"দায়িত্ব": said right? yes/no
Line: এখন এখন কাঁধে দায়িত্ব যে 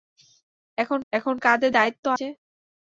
yes